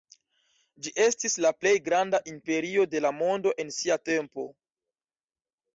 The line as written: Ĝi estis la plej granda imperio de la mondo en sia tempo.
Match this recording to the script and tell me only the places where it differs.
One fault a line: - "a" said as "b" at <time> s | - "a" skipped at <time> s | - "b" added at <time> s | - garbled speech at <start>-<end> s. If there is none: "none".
none